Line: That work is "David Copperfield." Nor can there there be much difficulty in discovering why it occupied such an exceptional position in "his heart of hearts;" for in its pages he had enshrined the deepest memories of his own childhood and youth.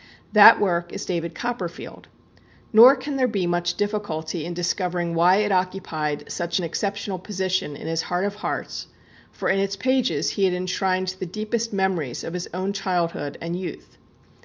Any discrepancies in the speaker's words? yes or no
yes